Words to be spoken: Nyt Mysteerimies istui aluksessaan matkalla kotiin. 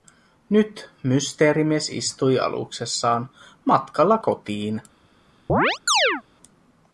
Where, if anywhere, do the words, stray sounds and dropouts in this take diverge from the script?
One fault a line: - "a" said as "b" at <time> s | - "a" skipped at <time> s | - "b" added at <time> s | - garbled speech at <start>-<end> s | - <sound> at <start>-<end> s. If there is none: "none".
- chirp at 5.5-6.2 s